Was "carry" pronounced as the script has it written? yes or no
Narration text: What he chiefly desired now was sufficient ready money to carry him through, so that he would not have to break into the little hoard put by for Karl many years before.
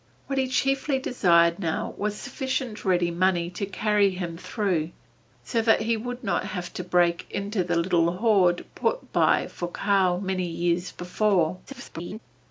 yes